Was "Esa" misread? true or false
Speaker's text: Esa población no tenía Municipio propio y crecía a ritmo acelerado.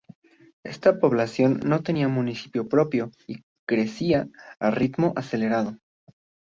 true